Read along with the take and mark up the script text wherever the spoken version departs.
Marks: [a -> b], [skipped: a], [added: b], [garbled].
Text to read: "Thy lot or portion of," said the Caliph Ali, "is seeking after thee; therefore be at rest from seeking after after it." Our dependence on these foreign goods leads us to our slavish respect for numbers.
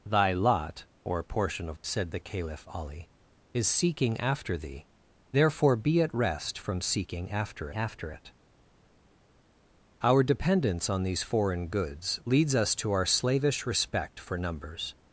"Thy lot or portion of," said the Caliph Ali, "is seeking after thee; therefore be at rest from seeking after after it." Our dependence on these foreign goods leads us to our slavish respect for numbers.